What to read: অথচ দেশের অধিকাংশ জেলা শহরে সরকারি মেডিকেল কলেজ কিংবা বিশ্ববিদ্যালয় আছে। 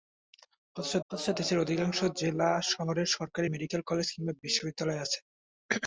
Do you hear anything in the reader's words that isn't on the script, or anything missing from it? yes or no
yes